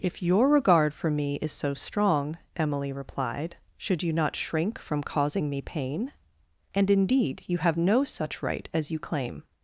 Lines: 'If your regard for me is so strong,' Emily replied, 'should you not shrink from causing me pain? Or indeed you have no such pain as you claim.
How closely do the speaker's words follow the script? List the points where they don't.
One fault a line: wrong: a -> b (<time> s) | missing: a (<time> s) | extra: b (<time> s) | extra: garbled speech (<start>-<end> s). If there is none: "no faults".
wrong: Or -> And (6.7 s)
wrong: pain -> right (8.4 s)